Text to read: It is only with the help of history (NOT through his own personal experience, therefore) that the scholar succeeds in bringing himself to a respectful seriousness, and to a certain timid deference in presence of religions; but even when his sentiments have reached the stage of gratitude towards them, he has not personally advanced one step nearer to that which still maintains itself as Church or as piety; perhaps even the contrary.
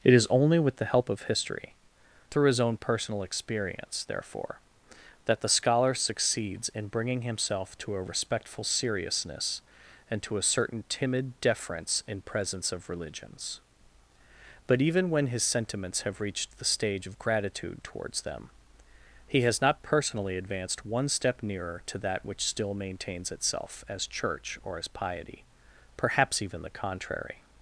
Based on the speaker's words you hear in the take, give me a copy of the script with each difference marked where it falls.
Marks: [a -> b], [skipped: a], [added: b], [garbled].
It is only with the help of history [skipped: (NOT] through his own personal experience, therefore) that the scholar succeeds in bringing himself to a respectful seriousness, and to a certain timid deference in presence of religions; but even when his sentiments have reached the stage of gratitude towards them, he has not personally advanced one step nearer to that which still maintains itself as Church or as piety; perhaps even the contrary.